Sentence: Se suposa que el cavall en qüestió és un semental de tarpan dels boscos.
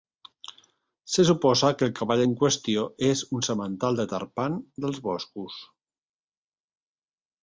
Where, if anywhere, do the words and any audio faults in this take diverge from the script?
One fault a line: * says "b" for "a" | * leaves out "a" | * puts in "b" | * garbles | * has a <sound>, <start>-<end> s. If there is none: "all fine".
all fine